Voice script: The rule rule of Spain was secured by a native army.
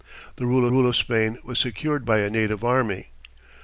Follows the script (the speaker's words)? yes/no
yes